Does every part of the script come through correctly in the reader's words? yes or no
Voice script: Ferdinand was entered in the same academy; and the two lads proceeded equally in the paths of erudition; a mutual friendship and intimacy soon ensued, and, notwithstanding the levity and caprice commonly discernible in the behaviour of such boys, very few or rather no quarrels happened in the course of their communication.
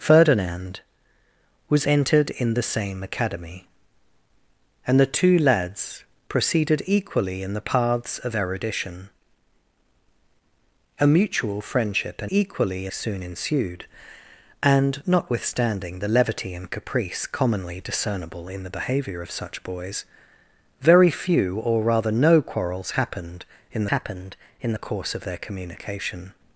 no